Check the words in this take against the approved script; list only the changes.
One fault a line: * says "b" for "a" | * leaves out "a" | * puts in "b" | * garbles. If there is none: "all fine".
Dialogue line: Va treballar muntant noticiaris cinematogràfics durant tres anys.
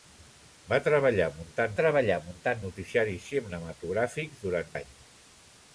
* puts in "treballar muntant"
* leaves out "tres"